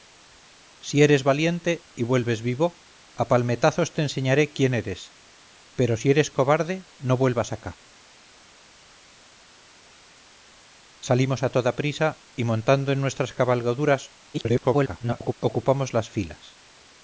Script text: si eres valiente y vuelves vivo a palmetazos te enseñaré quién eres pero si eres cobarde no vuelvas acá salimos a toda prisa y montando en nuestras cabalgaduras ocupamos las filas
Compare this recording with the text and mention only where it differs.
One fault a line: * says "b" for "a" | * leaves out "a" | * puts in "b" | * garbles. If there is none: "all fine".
* garbles